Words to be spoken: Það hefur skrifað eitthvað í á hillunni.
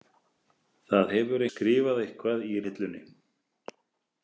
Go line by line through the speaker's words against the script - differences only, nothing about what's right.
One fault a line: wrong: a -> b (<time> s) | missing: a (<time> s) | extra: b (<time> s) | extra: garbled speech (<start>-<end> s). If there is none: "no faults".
no faults